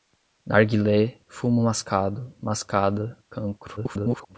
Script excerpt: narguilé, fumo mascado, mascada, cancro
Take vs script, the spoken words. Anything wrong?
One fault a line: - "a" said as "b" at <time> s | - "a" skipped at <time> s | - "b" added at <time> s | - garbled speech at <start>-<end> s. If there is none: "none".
- garbled speech at 3.8-4.4 s